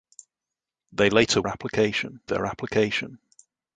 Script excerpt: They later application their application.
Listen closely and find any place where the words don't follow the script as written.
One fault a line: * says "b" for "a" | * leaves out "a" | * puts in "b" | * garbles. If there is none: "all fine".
all fine